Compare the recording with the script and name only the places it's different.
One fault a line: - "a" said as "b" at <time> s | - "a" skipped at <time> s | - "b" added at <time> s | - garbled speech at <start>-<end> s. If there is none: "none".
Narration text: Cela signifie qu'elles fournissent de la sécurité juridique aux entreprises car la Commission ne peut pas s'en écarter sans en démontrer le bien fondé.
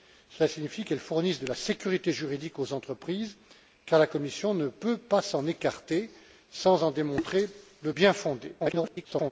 - garbled speech at 8.6-9.3 s